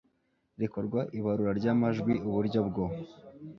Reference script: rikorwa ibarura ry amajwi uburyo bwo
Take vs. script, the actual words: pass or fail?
pass